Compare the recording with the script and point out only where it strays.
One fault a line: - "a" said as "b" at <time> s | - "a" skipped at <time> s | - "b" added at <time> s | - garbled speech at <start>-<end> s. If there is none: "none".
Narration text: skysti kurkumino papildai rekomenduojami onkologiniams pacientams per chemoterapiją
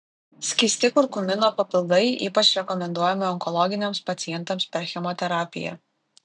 - "ypač" added at 2.3 s